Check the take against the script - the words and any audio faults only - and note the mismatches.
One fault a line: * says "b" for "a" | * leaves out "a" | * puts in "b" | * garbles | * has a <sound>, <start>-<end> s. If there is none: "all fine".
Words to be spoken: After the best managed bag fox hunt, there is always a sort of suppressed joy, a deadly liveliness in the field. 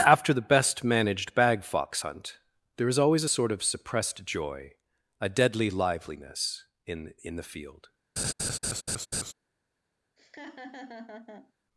* puts in "in"
* has a laugh, 8.2-9.3 s
* has a laugh, 10.2-11.5 s